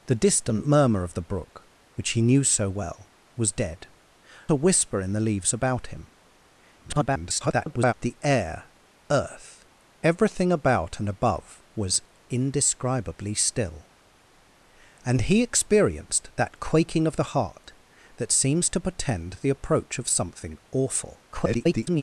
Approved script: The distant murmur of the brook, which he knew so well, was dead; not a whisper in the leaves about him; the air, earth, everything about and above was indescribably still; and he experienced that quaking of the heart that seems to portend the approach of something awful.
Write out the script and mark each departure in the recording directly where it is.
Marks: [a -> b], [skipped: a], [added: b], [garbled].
The distant murmur of the brook, which he knew so well, was dead; [skipped: not] a whisper in the leaves about him; [garbled] the air, earth, everything about and above was indescribably still; and he experienced that quaking of the heart that seems to portend the approach of something awful. [garbled]